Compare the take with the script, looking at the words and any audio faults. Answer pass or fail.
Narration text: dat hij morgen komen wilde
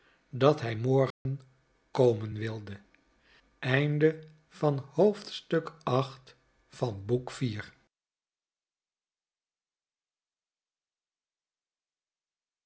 fail